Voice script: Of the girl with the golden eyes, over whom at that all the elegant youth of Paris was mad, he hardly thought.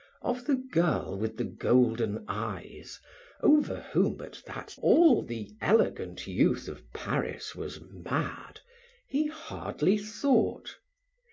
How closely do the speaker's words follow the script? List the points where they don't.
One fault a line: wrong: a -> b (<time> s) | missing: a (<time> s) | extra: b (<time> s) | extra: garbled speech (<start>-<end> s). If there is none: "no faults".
no faults